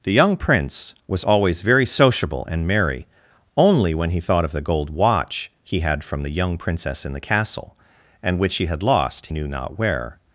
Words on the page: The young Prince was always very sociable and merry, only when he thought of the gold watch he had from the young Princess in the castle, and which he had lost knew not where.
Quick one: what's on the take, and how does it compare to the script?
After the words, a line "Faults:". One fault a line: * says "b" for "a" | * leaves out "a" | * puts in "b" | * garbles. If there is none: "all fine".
The young Prince was always very sociable and merry, only when he thought of the gold watch he had from the young Princess in the castle, and which he had lost knew not where.
Faults:
all fine